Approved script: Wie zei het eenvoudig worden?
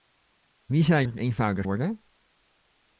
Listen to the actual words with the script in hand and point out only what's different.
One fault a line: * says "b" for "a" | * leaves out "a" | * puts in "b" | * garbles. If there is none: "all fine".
all fine